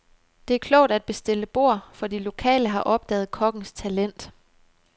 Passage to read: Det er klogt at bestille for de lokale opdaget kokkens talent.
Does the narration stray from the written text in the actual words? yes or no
yes